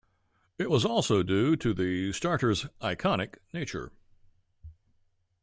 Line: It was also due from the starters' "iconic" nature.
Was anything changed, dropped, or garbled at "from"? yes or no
yes